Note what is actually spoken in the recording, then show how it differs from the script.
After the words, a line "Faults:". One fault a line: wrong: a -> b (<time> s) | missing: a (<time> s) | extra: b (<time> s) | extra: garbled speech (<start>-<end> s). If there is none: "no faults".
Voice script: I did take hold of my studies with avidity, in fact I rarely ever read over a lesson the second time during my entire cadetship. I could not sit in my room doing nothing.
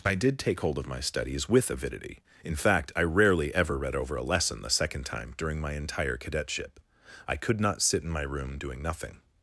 I did take hold of my studies with avidity, in fact I rarely ever read over a lesson the second time during my entire cadetship. I could not sit in my room doing nothing.
Faults:
no faults